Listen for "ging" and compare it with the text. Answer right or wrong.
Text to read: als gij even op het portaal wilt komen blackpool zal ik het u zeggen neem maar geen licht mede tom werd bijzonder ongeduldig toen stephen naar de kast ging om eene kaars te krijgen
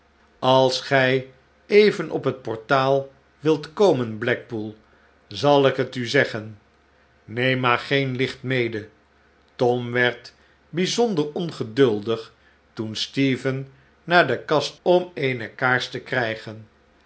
wrong